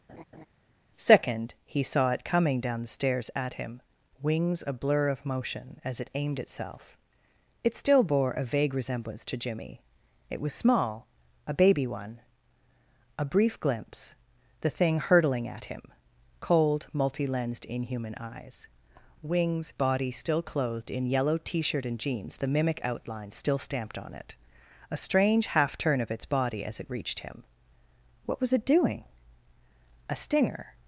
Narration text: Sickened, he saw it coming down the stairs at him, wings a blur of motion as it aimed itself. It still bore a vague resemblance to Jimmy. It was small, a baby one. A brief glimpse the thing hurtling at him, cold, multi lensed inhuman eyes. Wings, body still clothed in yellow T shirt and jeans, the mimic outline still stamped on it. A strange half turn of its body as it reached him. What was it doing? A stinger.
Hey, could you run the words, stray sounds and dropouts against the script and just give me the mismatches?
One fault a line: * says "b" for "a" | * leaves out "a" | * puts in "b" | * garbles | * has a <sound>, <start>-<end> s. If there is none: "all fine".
* has a laugh, 0.1-0.5 s
* says "Second" for "Sickened"